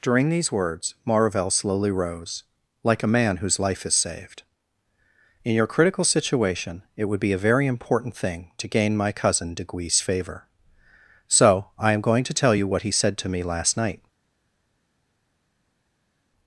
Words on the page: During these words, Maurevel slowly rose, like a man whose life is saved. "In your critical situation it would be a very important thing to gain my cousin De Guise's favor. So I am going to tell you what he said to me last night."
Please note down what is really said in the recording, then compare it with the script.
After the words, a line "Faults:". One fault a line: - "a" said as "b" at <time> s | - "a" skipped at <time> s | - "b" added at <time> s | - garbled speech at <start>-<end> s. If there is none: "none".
During these words, Maurevel slowly rose, like a man whose life is saved. "In your critical situation it would be a very important thing to gain my cousin De Guise's favor. So I am going to tell you what he said to me last night."
Faults:
none